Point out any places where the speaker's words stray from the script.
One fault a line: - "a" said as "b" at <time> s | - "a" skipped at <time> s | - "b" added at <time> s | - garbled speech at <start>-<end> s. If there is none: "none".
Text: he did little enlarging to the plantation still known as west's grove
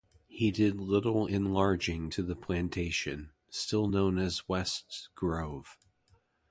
none